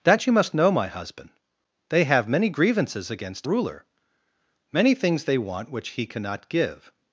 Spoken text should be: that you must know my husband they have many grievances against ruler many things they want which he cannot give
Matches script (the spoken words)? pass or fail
pass